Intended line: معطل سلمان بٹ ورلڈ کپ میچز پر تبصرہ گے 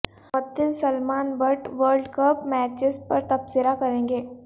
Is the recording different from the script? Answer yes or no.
yes